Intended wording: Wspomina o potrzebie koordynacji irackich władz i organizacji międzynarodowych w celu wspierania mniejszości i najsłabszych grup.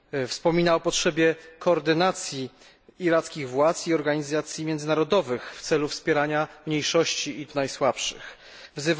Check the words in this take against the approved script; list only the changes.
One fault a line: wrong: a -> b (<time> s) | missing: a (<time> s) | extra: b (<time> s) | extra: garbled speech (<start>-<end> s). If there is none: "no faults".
no faults